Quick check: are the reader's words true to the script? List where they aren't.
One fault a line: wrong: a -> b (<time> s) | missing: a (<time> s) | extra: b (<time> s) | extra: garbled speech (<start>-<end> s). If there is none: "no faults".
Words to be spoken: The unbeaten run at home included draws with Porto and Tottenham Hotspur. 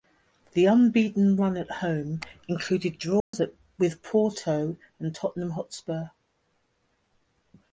no faults